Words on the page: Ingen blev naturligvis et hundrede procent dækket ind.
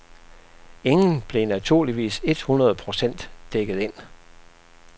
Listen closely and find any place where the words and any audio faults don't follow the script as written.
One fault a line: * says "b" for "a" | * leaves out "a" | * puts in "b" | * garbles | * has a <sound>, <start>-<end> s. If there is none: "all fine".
all fine